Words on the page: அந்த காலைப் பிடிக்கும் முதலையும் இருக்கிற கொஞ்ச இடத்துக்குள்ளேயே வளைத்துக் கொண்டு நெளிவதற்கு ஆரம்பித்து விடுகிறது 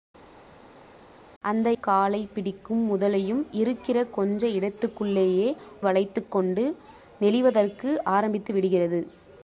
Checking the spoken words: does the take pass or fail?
pass